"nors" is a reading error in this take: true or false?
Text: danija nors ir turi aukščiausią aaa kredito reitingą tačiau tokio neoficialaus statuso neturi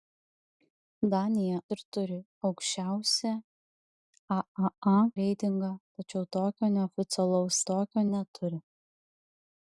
true